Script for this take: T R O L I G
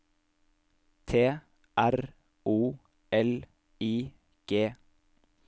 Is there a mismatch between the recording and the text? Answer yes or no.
no